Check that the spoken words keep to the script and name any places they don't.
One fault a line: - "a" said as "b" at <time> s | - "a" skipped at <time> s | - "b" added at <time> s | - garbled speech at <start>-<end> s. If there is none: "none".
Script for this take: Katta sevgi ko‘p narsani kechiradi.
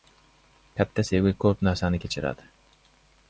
none